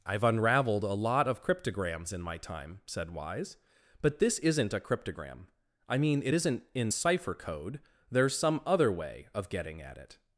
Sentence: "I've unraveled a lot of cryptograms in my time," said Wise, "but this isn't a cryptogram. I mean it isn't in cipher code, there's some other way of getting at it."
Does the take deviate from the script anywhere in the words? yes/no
no